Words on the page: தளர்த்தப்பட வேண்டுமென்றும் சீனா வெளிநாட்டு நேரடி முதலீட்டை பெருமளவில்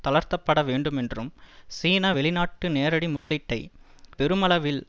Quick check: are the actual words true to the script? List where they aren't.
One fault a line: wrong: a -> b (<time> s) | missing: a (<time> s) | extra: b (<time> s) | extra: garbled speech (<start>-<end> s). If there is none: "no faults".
no faults